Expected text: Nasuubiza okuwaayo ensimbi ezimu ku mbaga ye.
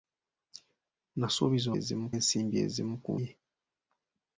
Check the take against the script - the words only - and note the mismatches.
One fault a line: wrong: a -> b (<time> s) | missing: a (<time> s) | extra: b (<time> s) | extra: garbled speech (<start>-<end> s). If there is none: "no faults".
wrong: okuwaayo -> ezimu (1.8 s)
missing: mbaga (3.1 s)